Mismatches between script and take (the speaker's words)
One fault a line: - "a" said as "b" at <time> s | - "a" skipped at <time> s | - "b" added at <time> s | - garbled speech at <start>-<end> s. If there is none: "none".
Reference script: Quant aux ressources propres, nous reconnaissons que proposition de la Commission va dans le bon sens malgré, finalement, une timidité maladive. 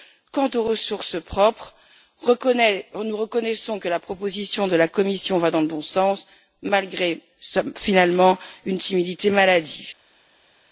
- "la" added at 3.9 s